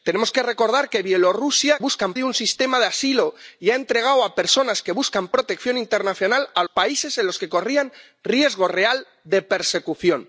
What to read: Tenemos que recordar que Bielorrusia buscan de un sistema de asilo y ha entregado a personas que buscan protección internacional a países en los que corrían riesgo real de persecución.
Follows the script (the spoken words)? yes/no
yes